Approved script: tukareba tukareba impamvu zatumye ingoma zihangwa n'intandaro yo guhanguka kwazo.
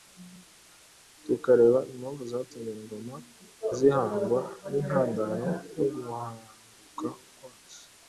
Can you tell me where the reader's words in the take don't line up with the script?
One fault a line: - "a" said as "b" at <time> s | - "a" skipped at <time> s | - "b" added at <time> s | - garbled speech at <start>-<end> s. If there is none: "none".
- "tukareba" skipped at 1.8 s